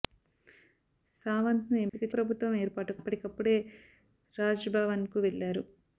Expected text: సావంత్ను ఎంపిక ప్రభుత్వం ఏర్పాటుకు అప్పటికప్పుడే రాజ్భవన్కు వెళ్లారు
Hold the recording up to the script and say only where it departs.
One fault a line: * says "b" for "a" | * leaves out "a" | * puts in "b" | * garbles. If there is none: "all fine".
all fine